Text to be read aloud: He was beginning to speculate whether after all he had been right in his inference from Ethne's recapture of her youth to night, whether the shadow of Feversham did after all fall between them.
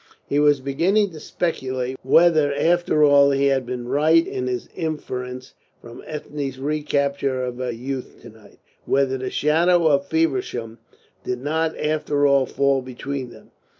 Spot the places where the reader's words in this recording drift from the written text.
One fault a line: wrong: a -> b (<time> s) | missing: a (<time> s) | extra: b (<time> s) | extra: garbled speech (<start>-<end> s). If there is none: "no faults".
extra: not (11.4 s)